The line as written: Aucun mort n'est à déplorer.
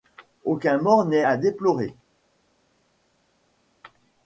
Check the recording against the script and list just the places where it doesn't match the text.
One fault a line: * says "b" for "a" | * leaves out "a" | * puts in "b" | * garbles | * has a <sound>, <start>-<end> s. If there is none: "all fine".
all fine